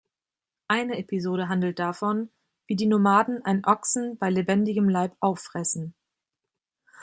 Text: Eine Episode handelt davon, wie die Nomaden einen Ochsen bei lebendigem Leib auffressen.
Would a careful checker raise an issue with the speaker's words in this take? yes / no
no